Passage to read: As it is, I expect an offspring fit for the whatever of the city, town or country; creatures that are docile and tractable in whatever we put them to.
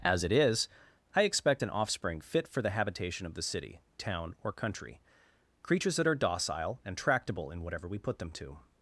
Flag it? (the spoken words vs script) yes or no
yes